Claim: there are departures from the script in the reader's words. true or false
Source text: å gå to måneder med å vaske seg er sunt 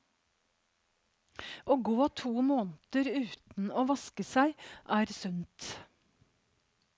true